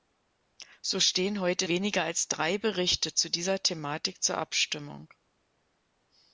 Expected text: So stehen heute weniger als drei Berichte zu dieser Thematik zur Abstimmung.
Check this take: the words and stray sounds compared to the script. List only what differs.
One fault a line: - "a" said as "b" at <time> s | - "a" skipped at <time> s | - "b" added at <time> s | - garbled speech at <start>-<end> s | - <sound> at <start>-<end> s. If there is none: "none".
none